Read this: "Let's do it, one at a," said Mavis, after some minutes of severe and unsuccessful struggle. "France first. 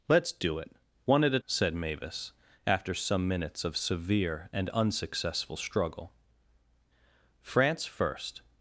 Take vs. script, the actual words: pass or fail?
pass